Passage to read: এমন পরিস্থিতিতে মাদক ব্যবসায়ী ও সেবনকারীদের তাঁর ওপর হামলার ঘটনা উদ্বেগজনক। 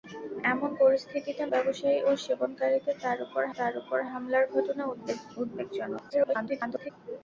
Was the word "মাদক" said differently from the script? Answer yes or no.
yes